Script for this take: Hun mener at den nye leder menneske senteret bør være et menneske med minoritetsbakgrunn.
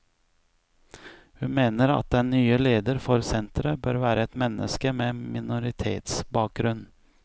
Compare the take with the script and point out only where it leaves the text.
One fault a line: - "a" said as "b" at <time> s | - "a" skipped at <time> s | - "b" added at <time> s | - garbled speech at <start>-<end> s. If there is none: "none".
- "menneske" said as "for" at 3.0 s